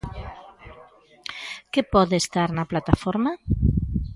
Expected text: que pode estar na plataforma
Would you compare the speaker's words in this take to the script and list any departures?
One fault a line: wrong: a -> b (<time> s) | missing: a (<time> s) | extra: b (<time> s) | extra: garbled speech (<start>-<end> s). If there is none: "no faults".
no faults